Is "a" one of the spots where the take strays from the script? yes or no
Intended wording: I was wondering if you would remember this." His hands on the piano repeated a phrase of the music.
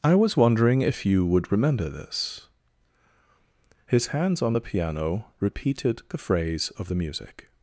yes